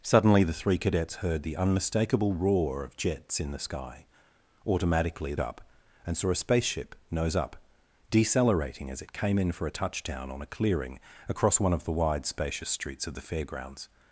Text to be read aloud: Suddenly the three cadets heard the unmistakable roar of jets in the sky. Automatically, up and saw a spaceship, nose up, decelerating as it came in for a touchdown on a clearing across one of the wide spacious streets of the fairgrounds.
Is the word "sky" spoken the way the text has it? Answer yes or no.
yes